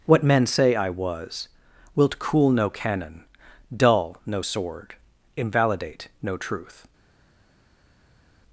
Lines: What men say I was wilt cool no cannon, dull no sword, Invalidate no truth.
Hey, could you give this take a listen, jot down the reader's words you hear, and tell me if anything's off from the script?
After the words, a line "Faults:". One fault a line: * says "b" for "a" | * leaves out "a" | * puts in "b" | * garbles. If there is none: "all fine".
What men say I was wilt cool no cannon, dull no sword, Invalidate no truth.
Faults:
all fine